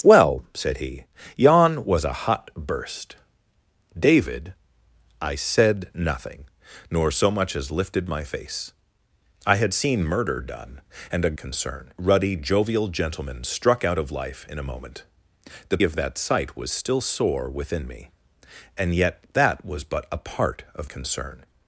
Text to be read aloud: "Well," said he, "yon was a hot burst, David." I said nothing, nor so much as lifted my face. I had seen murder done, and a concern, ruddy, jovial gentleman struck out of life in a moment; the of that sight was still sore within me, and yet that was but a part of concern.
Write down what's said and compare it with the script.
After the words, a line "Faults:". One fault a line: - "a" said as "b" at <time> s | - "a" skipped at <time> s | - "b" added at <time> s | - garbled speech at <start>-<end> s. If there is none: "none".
"Well," said he, "yon was a hot burst, David." I said nothing, nor so much as lifted my face. I had seen murder done, and a concern, ruddy, jovial gentleman struck out of life in a moment; the of that sight was still sore within me, and yet that was but a part of concern.
Faults:
none